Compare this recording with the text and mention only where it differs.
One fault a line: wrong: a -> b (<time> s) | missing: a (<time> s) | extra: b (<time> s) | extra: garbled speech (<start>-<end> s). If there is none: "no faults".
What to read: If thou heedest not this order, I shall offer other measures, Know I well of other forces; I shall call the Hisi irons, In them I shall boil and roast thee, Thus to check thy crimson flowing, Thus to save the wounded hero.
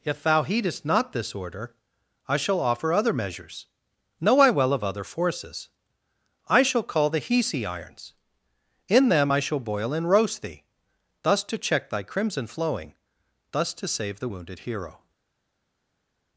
no faults